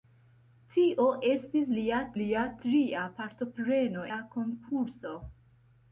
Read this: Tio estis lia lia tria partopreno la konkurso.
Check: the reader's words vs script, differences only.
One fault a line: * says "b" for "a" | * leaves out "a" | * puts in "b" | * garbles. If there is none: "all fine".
all fine